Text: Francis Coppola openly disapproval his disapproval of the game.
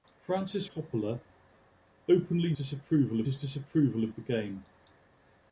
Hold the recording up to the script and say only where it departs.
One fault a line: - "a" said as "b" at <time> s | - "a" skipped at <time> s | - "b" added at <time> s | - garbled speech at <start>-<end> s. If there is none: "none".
none